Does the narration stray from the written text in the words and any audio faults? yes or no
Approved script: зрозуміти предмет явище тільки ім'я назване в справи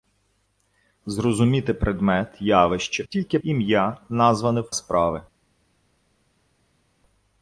no